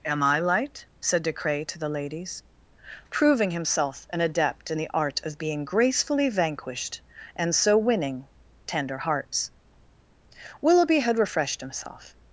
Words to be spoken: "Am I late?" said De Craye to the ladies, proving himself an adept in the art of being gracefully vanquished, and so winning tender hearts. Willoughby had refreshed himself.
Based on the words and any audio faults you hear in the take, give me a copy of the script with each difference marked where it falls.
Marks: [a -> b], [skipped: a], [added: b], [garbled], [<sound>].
"Am I [late?" -> light] said De Craye to the ladies, proving himself an adept in the art of being gracefully vanquished, and so winning tender hearts. Willoughby had refreshed himself.